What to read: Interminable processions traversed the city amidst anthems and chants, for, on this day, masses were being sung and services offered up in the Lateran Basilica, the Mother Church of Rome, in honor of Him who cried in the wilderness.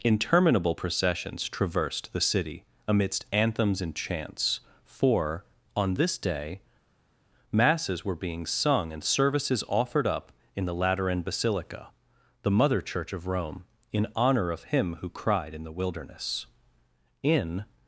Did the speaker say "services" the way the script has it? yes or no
yes